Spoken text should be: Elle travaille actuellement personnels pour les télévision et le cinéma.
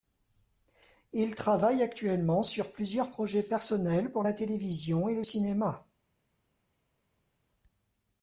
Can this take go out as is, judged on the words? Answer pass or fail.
fail